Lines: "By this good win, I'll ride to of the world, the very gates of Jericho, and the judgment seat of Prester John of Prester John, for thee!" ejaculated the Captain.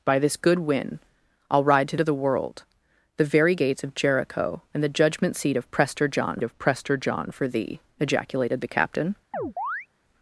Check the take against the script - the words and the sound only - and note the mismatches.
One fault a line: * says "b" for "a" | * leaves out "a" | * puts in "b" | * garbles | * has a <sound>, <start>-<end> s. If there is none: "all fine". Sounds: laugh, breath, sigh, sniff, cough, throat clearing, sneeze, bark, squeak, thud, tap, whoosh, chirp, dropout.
* has a chirp, 9.3-9.9 s